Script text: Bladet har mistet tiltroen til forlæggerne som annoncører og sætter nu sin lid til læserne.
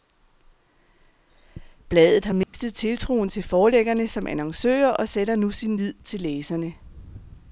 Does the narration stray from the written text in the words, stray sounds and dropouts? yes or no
yes